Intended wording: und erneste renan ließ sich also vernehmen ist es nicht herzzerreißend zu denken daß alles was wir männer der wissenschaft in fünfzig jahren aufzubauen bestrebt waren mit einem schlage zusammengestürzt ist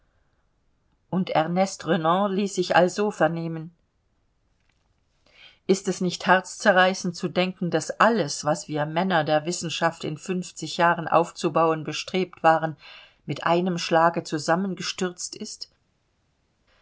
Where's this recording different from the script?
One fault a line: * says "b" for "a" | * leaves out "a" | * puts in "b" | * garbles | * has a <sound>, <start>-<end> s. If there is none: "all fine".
all fine